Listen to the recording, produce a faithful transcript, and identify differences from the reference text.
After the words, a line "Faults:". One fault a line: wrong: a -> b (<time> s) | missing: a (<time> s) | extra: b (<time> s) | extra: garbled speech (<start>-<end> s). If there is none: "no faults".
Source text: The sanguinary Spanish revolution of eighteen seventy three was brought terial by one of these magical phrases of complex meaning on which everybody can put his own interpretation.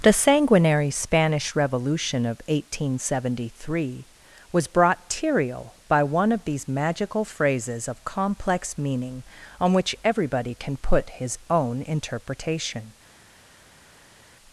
The sanguinary Spanish revolution of eighteen seventy three was brought terial by one of these magical phrases of complex meaning on which everybody can put his own interpretation.
Faults:
no faults